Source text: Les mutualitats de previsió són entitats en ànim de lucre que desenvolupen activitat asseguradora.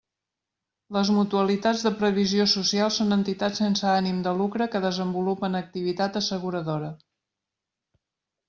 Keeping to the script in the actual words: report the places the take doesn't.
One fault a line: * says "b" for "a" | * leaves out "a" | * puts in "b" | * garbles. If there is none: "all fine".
* puts in "social"
* says "sense" for "en"